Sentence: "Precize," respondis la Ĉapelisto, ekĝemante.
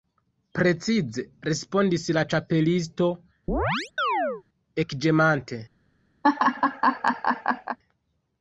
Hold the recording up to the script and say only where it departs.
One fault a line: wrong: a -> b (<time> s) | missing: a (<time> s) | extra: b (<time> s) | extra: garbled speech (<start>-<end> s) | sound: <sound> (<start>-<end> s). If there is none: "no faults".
sound: chirp (3.5-4.4 s)
sound: laugh (6.2-7.8 s)